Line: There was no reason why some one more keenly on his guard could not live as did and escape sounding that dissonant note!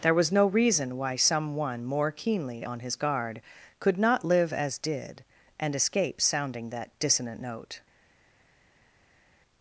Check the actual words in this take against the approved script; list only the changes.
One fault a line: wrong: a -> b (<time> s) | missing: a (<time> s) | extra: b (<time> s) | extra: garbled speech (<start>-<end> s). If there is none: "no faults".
no faults